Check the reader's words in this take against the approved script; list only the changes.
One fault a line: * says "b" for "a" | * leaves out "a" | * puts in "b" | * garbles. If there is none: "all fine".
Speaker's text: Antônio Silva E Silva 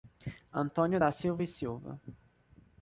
* puts in "da"